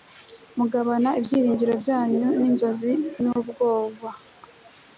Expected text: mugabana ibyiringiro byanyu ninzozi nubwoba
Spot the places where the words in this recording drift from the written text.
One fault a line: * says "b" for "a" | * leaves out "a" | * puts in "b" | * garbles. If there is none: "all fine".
all fine